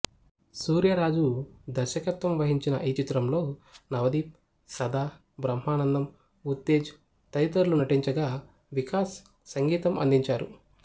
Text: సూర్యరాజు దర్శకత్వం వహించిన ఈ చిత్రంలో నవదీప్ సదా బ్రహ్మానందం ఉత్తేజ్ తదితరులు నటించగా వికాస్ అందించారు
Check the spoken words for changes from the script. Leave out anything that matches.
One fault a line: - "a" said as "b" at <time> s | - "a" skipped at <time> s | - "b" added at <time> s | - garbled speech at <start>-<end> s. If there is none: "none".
- "సంగీతం" added at 9.5 s